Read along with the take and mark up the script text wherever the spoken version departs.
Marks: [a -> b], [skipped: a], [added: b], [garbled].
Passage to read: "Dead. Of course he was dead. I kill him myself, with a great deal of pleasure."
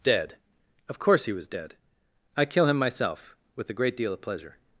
"Dead. Of course he was dead. I kill him myself, with a great deal of pleasure."